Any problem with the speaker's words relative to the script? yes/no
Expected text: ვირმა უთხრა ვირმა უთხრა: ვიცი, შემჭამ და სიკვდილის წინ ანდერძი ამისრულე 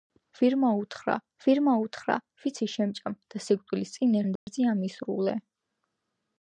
no